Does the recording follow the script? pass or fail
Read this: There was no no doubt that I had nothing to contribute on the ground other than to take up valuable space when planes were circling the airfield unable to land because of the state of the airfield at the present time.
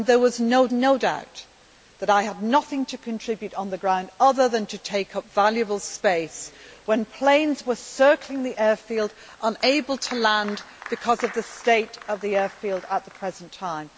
pass